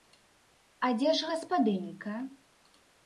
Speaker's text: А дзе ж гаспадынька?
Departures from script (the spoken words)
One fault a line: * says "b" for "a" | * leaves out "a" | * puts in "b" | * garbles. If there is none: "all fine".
all fine